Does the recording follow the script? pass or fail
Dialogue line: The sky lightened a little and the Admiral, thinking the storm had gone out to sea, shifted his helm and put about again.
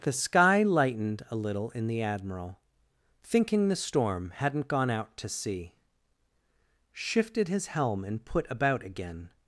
fail